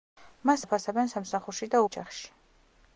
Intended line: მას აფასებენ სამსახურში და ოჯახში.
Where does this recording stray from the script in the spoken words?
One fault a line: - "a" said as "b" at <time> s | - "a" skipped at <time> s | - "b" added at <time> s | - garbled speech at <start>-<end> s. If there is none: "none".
none